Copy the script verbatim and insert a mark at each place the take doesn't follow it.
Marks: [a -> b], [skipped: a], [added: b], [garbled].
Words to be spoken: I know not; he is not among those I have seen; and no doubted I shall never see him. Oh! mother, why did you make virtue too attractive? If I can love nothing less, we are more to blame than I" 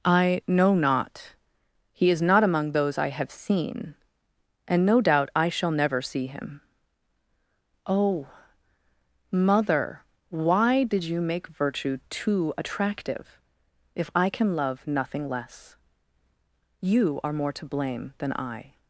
I know not; he is not among those I have seen; and no [doubted -> doubt] I shall never see him. Oh! mother, why did you make virtue too attractive? If I can love nothing less, [we -> you] are more to blame than I"